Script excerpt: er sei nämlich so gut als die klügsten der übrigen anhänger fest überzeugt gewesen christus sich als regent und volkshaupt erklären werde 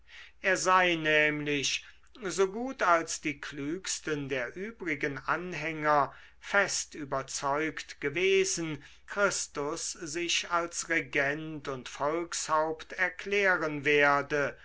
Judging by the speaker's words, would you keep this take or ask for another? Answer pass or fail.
pass